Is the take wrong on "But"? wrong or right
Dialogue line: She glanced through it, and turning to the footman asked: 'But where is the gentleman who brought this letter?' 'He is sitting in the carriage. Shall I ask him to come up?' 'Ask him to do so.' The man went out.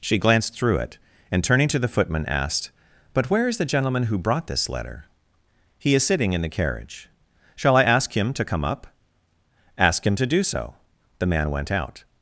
right